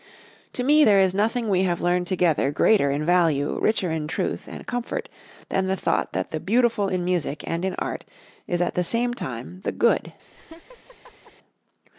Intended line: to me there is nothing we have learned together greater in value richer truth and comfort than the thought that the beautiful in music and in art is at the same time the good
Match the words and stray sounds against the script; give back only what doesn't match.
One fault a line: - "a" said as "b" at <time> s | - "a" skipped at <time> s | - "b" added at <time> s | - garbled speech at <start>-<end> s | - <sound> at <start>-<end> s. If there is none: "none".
- "in" added at 3.9 s
- laugh at 10.3-11.3 s